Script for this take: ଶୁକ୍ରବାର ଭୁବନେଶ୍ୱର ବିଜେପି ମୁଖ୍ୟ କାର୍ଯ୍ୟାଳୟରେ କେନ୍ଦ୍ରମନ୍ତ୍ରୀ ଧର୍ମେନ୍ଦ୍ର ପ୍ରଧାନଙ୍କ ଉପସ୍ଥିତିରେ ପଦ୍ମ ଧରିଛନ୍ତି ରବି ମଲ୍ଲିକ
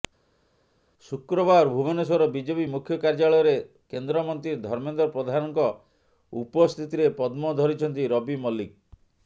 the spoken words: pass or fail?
pass